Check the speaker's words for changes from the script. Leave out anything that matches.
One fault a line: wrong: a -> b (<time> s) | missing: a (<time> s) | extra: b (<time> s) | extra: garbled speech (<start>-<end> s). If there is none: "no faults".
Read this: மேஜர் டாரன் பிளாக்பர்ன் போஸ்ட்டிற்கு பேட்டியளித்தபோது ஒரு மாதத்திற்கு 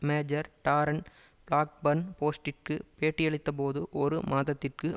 no faults